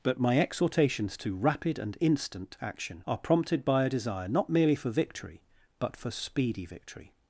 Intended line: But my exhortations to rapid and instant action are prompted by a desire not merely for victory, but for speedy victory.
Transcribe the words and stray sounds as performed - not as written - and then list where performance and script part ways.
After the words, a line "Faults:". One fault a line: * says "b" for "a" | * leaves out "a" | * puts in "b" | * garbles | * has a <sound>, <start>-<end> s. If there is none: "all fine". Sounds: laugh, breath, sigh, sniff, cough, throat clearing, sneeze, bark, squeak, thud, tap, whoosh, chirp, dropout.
But my exhortations to rapid and instant action are prompted by a desire not merely for victory, but for speedy victory.
Faults:
all fine